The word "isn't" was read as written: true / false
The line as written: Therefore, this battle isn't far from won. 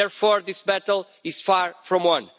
false